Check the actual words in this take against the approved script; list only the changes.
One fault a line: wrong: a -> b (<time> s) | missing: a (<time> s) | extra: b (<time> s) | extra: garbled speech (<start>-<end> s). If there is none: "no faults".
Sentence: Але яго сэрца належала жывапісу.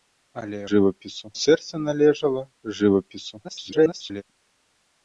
wrong: яго -> жывапісу (0.7 s)
extra: garbled speech (3.4-4.2 s)